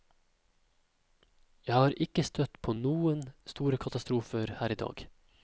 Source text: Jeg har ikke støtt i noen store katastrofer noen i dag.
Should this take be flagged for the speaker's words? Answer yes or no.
yes